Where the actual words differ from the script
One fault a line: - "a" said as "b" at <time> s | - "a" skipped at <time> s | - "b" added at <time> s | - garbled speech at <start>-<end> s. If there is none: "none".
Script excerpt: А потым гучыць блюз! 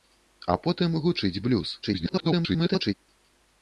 - garbled speech at 1.8-2.9 s